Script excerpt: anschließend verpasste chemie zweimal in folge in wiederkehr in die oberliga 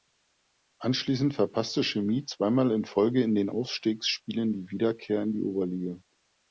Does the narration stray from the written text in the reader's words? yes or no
yes